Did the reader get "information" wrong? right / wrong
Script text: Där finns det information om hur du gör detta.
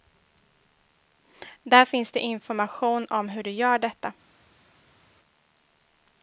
right